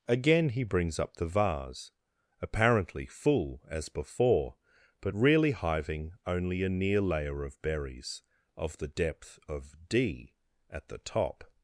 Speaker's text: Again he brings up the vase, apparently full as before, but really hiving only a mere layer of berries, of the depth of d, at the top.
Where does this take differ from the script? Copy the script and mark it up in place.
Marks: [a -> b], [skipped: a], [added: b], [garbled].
Again he brings up the vase, apparently full as before, but really hiving only a [mere -> near] layer of berries, of the depth of d, at the top.